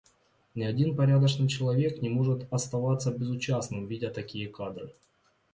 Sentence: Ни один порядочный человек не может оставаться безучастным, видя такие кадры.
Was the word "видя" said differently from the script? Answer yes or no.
no